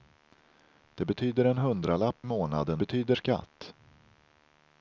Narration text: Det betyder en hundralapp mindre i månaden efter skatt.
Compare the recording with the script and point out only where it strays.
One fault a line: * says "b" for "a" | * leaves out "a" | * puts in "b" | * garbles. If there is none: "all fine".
* leaves out "mindre"
* says "betyder" for "efter"